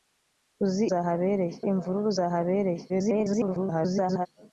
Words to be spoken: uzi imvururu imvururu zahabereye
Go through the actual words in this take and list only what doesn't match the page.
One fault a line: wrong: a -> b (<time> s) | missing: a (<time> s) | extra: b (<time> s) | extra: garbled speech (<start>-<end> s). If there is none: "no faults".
wrong: imvururu -> zahabereye (0.9 s)
extra: garbled speech (2.9-4.3 s)